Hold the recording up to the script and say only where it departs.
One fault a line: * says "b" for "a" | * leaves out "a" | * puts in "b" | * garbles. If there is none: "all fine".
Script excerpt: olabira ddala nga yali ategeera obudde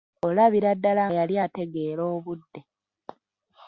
* leaves out "nga"